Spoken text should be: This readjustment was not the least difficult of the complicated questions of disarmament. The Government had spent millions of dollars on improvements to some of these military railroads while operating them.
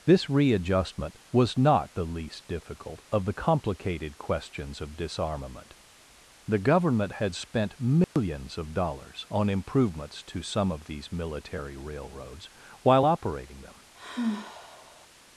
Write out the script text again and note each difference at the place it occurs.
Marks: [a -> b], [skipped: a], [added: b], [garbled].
This readjustment was not the least difficult of the complicated questions of disarmament. The Government had spent millions of dollars on improvements to some of these military railroads while operating them.